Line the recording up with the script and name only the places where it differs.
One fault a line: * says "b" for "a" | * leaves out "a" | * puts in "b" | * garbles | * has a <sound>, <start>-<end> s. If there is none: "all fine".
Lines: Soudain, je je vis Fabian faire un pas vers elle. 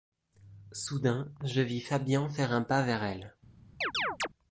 * leaves out "je"
* has a chirp, 3.8-4.3 s